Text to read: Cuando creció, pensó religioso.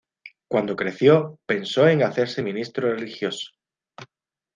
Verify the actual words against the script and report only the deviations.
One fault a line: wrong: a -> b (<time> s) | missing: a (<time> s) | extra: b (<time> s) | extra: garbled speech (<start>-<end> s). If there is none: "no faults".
extra: en hacerse ministro (1.9 s)